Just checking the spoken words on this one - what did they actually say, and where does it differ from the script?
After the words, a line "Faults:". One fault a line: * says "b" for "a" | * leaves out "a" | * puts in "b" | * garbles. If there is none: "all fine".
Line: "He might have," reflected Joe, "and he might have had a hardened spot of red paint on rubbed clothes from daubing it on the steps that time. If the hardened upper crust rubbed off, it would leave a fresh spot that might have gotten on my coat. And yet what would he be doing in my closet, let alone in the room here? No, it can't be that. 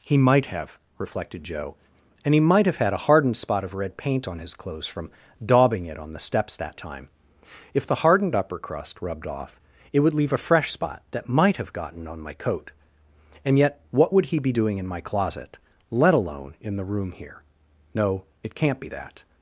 "He might have," reflected Joe, "and he might have had a hardened spot of red paint on his clothes from daubing it on the steps that time. If the hardened upper crust rubbed off, it would leave a fresh spot that might have gotten on my coat. And yet what would he be doing in my closet, let alone in the room here? No, it can't be that.
Faults:
* says "his" for "rubbed"